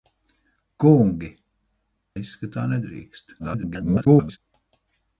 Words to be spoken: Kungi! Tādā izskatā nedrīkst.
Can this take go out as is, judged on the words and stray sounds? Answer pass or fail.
fail